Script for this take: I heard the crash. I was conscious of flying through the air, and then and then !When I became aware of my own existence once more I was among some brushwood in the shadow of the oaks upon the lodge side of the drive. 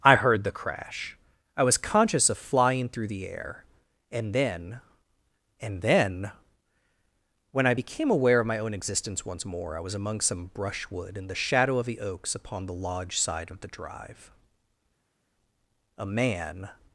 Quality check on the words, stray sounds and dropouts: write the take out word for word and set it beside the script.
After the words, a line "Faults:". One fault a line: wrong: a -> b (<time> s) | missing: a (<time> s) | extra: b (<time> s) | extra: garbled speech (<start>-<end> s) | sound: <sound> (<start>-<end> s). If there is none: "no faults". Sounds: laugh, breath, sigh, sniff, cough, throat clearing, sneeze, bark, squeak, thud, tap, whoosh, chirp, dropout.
I heard the crash. I was conscious of flying through the air, and then and then !When I became aware of my own existence once more I was among some brushwood in the shadow of the oaks upon the lodge side of the drive. A man
Faults:
extra: A man (16.0 s)